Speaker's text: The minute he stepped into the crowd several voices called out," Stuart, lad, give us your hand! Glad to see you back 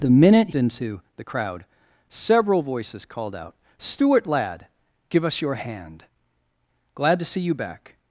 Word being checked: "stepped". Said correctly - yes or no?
no